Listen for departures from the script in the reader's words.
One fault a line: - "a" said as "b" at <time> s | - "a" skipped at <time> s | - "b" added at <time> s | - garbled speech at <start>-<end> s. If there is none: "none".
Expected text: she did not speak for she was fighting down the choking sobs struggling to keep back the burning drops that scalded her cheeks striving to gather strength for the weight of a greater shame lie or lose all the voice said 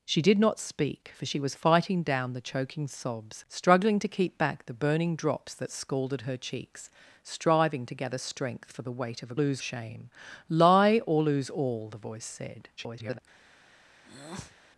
- "greater" said as "lose" at 9.3 s
- garbled speech at 12.8-13.2 s